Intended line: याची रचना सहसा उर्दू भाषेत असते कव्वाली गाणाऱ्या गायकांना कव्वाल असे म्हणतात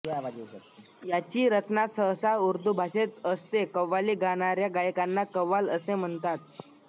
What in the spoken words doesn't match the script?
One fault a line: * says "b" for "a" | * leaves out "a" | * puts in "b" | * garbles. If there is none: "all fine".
all fine